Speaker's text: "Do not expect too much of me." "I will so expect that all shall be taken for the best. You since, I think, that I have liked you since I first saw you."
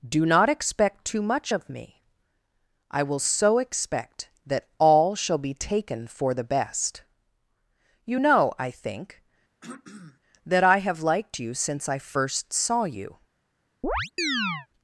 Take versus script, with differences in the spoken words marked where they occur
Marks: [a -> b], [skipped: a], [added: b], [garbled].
"Do not expect too much of me." "I will so expect that all shall be taken for the best. You [since, -> know] I think, that I have liked you since I first saw you."